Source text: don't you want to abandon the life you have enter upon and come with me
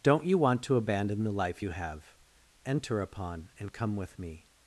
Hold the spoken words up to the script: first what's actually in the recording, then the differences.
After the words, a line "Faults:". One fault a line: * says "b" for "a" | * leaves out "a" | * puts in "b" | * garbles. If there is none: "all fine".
don't you want to abandon the life you have enter upon and come with me
Faults:
all fine